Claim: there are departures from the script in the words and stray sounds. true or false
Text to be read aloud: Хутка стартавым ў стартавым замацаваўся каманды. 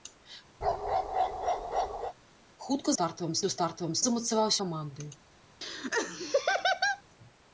true